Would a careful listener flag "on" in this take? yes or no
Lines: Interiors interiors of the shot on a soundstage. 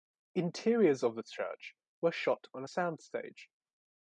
no